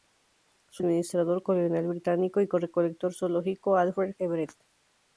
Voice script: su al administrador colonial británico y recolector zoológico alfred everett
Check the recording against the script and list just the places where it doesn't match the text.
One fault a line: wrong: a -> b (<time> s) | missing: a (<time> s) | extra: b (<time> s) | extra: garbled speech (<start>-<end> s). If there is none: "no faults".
no faults